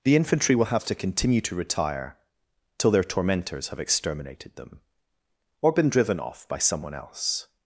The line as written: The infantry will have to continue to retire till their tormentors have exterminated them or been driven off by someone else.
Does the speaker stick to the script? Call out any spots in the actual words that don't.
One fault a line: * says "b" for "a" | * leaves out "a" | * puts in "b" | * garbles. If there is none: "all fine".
all fine